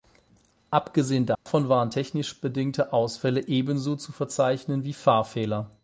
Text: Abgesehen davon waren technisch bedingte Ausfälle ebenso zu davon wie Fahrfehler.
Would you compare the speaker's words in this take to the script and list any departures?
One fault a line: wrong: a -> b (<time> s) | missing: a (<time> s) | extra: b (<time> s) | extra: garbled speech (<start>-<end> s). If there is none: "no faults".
wrong: davon -> verzeichnen (4.1 s)